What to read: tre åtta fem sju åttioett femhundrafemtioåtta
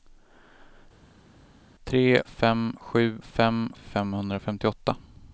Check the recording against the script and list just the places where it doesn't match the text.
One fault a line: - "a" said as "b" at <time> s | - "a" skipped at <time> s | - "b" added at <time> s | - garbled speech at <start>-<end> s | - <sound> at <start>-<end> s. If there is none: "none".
- "åtta" skipped at 2.2 s
- "åttioett" said as "fem" at 3.2 s